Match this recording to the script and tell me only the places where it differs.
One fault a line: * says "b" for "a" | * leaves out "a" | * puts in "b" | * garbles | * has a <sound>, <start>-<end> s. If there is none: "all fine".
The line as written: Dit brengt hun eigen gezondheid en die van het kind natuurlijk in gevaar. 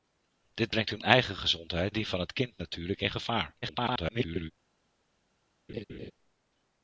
* leaves out "en"
* garbles
* has a laugh, 5.7-6.1 s